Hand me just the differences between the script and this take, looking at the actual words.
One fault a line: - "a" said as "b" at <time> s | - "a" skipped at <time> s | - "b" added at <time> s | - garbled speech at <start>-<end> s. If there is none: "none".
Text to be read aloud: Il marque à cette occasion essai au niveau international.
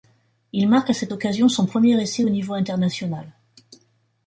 - "son premier" added at 1.5 s